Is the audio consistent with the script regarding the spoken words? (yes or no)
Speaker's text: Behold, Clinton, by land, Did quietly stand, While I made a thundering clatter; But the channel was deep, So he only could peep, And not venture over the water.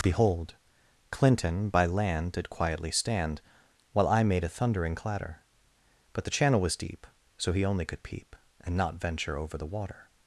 yes